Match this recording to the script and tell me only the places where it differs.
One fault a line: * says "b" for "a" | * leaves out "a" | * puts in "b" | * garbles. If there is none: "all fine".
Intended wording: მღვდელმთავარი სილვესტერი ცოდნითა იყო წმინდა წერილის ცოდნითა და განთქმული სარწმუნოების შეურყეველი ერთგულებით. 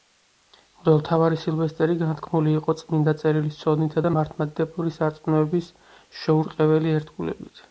* says "განთქმული" for "ცოდნითა"
* says "მართლმადიდებლური" for "განთქმული"